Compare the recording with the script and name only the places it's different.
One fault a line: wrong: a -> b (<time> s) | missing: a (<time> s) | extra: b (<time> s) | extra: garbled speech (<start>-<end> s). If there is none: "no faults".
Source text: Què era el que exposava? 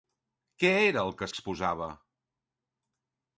no faults